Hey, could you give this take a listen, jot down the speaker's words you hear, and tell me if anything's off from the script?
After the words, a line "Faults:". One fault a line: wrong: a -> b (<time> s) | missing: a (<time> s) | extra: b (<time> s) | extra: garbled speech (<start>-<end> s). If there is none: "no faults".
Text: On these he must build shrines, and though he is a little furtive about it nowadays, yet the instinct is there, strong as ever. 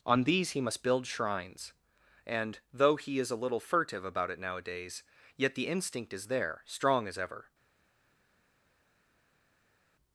On these he must build shrines, and though he is a little furtive about it nowadays, yet the instinct is there, strong as ever.
Faults:
no faults